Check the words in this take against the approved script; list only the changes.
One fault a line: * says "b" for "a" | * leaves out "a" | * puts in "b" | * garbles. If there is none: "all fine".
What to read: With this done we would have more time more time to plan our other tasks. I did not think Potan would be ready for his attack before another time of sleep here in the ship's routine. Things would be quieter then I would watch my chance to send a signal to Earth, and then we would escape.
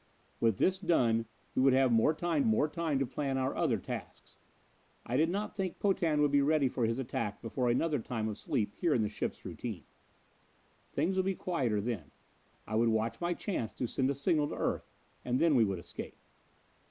all fine